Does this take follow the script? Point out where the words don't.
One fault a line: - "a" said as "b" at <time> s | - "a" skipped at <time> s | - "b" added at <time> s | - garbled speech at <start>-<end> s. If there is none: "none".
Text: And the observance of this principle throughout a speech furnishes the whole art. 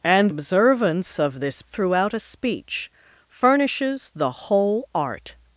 - "the" skipped at 0.3 s
- "principle" skipped at 1.6 s